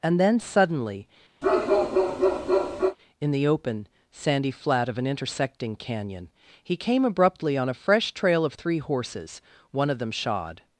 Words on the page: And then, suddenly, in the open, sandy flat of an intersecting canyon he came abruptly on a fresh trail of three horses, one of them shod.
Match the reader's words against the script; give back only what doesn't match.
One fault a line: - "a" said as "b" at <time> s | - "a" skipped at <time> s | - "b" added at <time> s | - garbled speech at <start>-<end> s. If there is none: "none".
none